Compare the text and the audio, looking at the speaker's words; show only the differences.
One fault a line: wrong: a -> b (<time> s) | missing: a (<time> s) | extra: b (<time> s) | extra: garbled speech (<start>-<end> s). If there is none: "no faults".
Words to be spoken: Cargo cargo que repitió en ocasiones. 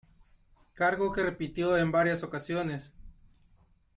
missing: cargo (1.1 s)
extra: varias (1.9 s)